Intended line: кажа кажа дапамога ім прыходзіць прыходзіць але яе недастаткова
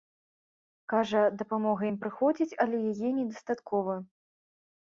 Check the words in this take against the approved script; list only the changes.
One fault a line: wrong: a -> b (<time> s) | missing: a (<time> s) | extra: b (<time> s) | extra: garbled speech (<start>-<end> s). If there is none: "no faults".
missing: кажа (1.2 s)
missing: прыходзіць (2.6 s)